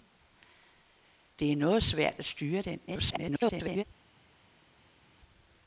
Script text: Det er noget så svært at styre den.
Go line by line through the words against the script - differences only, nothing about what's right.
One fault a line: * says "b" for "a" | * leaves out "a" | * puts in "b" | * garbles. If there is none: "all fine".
* leaves out "så"
* garbles